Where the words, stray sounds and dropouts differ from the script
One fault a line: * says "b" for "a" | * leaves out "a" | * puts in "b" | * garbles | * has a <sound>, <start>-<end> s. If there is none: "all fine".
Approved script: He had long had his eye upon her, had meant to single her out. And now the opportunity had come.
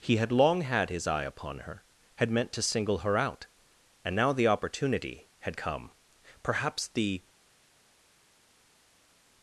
* puts in "Perhaps the"